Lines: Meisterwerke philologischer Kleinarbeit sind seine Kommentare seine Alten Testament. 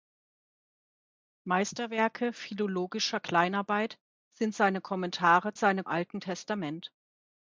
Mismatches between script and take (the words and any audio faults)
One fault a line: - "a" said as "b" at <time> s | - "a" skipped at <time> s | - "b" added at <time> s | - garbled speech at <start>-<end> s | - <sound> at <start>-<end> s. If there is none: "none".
none